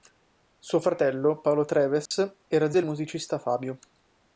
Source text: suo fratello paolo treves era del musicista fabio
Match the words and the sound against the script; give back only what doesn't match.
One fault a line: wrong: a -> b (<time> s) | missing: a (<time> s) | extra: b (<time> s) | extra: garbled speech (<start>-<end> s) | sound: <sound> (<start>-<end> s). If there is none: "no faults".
sound: dropout (2.1-2.1 s)